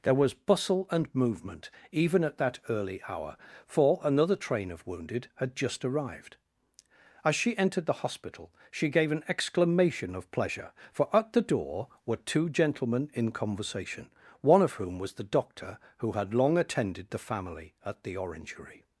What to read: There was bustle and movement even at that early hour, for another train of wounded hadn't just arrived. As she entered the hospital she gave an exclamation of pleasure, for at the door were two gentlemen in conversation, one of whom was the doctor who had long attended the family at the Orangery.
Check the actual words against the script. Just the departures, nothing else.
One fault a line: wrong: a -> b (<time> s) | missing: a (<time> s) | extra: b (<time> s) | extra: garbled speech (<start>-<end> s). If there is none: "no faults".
wrong: hadn't -> had (5.3 s)